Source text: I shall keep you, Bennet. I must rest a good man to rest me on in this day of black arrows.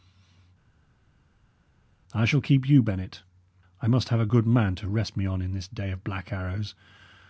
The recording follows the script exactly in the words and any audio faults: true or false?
false